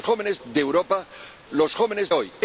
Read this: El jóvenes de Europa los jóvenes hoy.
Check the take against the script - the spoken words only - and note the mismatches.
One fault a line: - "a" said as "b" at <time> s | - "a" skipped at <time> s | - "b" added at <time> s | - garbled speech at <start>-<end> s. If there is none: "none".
none